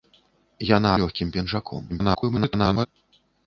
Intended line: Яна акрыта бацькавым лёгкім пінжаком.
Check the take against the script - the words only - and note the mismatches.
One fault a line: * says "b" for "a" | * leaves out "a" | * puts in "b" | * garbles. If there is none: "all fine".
* leaves out "акрыта бацькавым"
* garbles